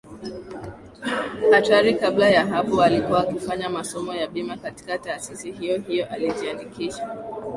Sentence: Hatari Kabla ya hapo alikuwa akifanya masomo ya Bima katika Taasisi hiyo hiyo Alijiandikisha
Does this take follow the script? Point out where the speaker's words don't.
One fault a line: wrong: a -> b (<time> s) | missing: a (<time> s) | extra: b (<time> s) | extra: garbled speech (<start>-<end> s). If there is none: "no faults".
no faults